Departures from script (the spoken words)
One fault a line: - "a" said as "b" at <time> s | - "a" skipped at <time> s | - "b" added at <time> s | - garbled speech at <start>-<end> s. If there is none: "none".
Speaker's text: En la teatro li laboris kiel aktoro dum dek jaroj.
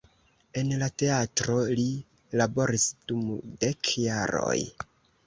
- "kiel aktoro" skipped at 2.9 s